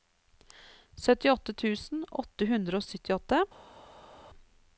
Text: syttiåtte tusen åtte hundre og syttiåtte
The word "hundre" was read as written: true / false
true